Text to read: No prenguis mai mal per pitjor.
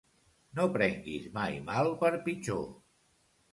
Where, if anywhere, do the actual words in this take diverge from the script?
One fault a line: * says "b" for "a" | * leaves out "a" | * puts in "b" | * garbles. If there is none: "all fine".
all fine